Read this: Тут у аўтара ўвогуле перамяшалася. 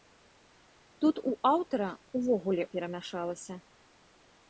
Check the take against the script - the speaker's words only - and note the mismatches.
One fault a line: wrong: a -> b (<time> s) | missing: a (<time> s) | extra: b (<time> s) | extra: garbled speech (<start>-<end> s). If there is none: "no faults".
no faults